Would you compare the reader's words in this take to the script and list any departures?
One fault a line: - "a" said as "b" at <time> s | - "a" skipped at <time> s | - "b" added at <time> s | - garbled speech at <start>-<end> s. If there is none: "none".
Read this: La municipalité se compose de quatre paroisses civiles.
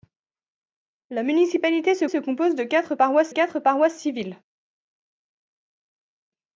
- "se" added at 2.1 s
- "quatre paroisses" added at 3.3 s